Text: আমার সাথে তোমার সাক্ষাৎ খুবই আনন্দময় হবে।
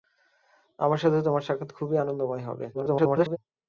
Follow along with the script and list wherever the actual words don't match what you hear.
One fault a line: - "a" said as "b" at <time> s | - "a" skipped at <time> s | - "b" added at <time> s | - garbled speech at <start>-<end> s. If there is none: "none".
- garbled speech at 2.7-3.4 s